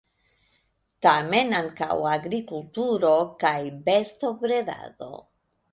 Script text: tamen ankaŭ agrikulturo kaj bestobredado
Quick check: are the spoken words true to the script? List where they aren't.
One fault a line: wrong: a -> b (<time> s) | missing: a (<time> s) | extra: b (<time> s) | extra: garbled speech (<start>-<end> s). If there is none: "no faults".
no faults